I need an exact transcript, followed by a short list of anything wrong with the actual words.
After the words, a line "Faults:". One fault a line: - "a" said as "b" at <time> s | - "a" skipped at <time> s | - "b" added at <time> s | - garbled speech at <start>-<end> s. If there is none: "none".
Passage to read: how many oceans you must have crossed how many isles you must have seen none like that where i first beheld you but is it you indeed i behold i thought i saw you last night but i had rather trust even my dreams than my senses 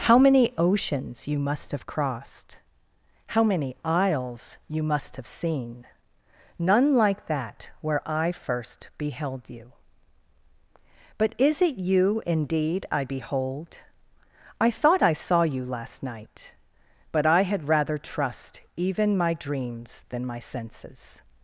how many oceans you must have crossed how many isles you must have seen none like that where i first beheld you but is it you indeed i behold i thought i saw you last night but i had rather trust even my dreams than my senses
Faults:
none